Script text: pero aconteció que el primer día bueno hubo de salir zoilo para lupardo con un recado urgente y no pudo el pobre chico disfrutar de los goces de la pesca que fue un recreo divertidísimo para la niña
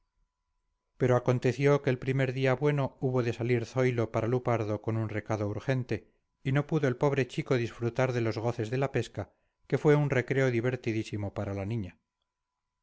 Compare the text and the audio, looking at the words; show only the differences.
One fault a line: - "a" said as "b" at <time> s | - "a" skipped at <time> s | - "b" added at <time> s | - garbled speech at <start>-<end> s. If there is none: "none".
none